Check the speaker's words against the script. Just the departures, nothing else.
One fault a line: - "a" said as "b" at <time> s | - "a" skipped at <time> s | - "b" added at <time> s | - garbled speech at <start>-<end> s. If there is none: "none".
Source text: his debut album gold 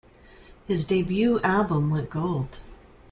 - "went" added at 1.9 s